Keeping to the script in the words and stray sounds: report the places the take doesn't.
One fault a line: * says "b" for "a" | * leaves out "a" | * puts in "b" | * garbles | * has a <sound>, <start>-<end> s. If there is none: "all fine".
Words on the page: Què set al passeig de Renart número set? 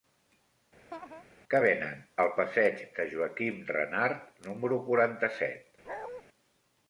* has a laugh, 0.9-1.2 s
* says "venen" for "set"
* puts in "Joaquim"
* puts in "quaranta"
* has a bark, 5.8-6.2 s